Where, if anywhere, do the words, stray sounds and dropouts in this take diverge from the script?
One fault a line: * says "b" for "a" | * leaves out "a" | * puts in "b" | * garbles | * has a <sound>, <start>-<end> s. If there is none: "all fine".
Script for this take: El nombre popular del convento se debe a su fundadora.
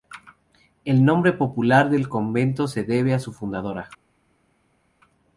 all fine